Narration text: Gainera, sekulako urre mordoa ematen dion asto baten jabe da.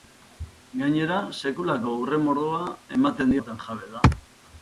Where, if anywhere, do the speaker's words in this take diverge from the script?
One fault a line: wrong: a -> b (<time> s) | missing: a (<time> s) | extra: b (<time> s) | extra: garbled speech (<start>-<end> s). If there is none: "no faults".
missing: dion asto (3.4 s)